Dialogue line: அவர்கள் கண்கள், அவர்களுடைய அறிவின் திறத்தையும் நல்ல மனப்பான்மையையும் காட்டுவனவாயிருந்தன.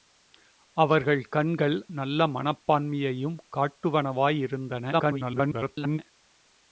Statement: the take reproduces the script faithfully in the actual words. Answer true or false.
false